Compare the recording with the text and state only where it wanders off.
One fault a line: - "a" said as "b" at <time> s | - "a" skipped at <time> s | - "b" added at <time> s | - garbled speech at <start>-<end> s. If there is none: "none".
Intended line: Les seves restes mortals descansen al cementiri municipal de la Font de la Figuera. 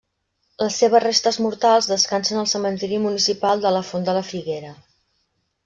none